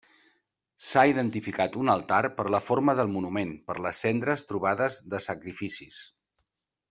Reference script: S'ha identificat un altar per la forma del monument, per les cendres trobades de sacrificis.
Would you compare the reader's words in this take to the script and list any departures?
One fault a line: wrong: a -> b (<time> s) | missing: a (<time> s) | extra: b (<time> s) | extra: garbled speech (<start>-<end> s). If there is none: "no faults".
no faults